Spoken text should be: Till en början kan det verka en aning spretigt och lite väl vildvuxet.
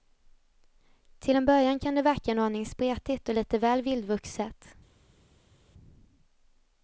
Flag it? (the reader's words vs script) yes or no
no